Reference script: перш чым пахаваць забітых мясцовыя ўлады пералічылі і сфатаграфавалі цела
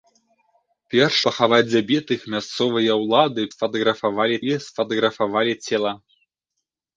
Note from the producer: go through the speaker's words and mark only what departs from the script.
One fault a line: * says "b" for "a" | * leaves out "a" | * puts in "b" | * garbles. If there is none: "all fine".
* leaves out "чым"
* says "сфатаграфавалі" for "пералічылі"